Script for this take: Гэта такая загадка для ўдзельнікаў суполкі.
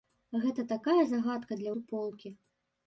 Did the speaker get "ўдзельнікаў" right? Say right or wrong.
wrong